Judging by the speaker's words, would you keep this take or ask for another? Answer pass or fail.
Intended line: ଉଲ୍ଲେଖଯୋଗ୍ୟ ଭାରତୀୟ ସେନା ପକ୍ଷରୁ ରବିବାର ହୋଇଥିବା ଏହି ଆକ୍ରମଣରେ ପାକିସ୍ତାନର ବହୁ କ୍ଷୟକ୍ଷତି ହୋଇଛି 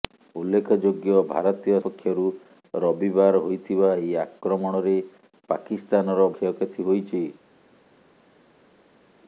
fail